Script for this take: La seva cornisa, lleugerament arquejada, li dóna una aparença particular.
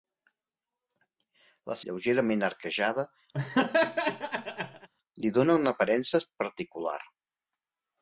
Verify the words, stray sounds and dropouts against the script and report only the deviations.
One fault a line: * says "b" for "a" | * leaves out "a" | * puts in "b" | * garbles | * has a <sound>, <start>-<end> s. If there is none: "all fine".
* leaves out "seva cornisa"
* has a laugh, 3.3-4.9 s